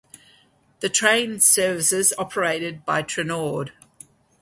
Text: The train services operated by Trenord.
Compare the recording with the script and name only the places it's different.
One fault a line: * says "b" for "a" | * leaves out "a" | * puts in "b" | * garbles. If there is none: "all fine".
all fine